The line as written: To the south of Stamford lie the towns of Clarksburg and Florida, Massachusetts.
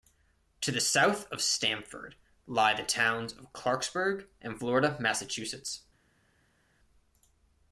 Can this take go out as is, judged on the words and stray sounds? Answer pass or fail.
pass